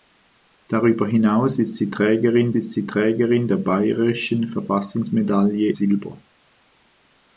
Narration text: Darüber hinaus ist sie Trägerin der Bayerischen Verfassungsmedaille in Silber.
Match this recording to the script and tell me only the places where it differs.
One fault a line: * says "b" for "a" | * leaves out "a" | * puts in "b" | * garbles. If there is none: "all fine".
* puts in "ist sie Trägerin"
* leaves out "in"